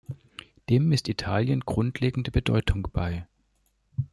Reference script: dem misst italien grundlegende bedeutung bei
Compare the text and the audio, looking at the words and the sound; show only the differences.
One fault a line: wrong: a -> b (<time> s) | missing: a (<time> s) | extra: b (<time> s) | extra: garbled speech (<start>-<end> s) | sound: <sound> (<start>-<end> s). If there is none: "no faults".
no faults